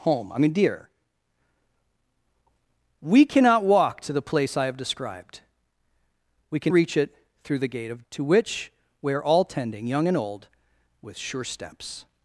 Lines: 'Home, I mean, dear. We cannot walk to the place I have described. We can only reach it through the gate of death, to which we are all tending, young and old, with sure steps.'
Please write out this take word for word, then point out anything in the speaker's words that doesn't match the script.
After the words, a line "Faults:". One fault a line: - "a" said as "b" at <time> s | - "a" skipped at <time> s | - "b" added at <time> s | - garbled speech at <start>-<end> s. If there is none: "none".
'Home, I mean, dear. We cannot walk to the place I have described. We can reach it through the gate of to which we are all tending, young and old, with sure steps.'
Faults:
- "only" skipped at 6.7 s
- "death" skipped at 8.0 s